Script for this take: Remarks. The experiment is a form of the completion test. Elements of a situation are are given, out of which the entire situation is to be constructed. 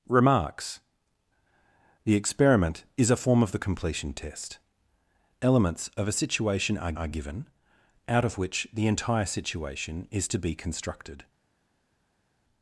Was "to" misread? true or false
false